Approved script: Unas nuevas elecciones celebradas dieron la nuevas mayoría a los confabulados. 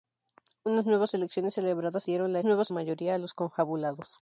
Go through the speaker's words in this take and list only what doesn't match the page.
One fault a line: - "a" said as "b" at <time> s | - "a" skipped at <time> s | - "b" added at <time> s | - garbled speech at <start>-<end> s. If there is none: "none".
none